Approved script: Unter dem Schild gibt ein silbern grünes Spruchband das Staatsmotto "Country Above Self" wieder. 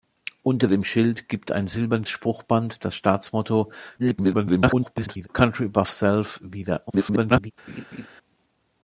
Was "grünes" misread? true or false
true